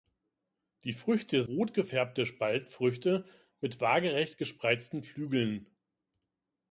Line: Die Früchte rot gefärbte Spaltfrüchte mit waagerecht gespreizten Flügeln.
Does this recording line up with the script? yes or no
yes